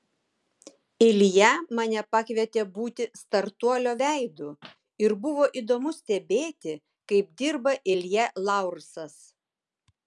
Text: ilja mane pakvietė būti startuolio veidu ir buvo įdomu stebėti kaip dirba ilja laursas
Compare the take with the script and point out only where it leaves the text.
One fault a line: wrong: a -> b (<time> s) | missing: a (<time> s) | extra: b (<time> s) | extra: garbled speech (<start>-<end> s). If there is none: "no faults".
no faults